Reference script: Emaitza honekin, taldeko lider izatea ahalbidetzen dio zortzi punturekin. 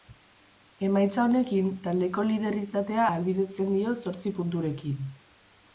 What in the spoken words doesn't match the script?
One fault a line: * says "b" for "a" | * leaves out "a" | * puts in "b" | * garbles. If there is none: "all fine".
all fine